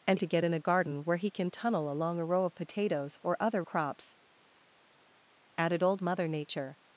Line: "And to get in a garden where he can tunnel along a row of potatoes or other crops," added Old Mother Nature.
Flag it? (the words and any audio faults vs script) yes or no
no